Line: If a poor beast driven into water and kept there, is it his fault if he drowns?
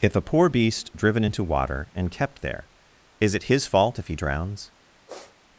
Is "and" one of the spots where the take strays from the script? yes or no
no